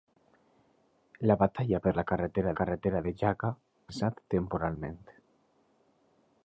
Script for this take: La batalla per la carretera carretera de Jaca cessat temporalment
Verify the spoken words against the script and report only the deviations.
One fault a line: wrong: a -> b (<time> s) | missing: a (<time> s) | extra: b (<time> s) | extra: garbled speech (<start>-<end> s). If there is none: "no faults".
no faults